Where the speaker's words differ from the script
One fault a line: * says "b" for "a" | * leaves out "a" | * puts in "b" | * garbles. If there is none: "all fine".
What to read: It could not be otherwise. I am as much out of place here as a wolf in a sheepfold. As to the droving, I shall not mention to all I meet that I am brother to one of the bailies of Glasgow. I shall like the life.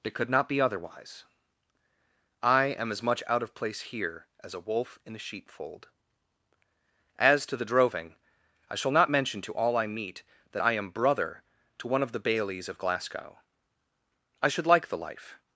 * says "should" for "shall"